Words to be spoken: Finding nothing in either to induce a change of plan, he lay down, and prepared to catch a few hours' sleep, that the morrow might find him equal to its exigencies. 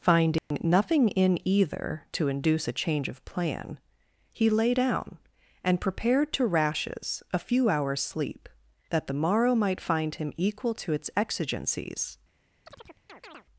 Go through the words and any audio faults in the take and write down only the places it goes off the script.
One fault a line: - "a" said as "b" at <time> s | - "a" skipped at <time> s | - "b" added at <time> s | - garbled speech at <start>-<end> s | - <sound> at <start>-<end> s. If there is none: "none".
- dropout at 0.4-0.5 s
- "catch" said as "rashes" at 6.5 s
- chirp at 12.7-13.4 s